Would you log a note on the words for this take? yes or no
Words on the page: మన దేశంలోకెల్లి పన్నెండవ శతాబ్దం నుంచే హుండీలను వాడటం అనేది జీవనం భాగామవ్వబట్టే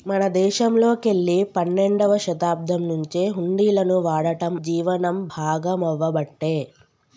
yes